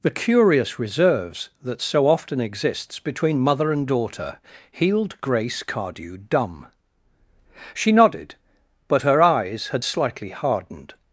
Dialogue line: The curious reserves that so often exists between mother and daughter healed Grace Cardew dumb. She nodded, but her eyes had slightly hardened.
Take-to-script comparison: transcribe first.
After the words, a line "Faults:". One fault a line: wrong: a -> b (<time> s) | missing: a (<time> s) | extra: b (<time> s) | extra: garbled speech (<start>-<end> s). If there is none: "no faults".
The curious reserves that so often exists between mother and daughter healed Grace Cardew dumb. She nodded, but her eyes had slightly hardened.
Faults:
no faults